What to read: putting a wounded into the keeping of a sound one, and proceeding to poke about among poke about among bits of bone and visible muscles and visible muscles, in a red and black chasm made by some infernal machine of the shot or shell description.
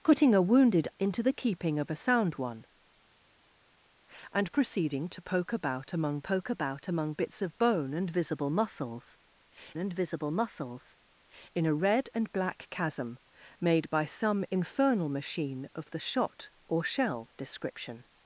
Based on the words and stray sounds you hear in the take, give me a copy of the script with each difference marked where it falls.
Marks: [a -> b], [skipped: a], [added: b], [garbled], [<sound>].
putting a wounded into the keeping of a sound one, and proceeding to poke about among poke about among bits of bone and visible muscles and visible muscles, in a red and black chasm made by some infernal machine of the shot or shell description.